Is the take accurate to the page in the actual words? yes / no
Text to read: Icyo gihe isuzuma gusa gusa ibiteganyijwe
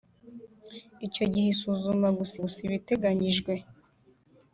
yes